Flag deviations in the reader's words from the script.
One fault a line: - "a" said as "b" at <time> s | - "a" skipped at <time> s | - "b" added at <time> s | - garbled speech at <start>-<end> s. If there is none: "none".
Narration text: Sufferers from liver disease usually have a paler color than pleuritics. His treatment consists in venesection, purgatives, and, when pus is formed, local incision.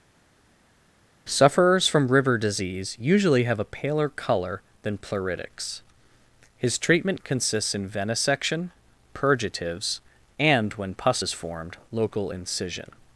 - "liver" said as "river" at 2.1 s